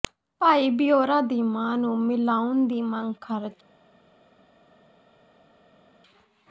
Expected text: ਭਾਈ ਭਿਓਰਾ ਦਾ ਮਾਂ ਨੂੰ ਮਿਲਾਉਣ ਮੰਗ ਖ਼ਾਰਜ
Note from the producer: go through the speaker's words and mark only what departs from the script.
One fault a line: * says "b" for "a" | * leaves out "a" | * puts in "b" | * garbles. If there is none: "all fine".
* says "ਦੀ" for "ਦਾ"
* puts in "ਦੀ"